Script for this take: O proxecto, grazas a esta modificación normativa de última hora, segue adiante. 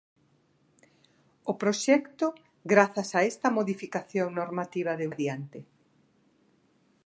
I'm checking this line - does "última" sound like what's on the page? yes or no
no